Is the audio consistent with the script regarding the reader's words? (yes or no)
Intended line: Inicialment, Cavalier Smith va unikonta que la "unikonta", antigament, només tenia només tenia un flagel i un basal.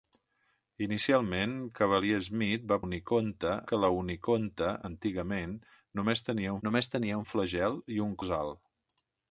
yes